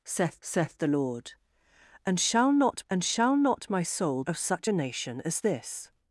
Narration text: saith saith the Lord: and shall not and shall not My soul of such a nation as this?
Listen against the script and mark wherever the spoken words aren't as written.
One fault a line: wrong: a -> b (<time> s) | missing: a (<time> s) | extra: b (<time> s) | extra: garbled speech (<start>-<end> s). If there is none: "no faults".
no faults